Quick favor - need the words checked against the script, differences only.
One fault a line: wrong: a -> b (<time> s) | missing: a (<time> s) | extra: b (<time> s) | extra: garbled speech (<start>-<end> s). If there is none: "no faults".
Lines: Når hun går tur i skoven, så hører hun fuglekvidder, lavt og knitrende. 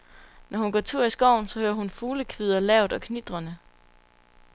no faults